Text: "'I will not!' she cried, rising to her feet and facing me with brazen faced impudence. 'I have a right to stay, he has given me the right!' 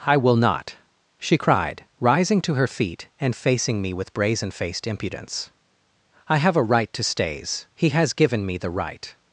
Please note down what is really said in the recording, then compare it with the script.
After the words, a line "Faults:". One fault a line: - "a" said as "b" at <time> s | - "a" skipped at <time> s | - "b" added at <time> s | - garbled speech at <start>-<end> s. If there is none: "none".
"'I will not!' she cried, rising to her feet and facing me with brazen faced impudence. 'I have a right to stays, he has given me the right!'
Faults:
- "stay" said as "stays" at 7.0 s